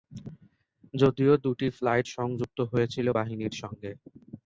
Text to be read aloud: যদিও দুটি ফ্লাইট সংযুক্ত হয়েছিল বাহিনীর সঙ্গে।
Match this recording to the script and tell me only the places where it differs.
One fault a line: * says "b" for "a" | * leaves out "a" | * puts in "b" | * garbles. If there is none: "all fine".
all fine